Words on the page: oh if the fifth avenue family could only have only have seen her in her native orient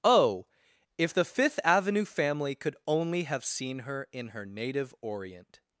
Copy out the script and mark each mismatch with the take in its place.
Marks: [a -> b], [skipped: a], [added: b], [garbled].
oh if the fifth avenue family could only have [skipped: only have] seen her in her native orient